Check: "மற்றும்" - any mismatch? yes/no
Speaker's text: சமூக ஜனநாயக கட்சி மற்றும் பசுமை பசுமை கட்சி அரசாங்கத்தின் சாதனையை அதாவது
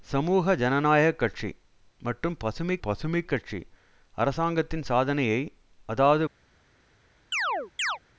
no